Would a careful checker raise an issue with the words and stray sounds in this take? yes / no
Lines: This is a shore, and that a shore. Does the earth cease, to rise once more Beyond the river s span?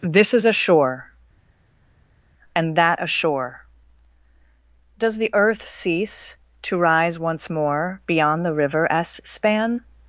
no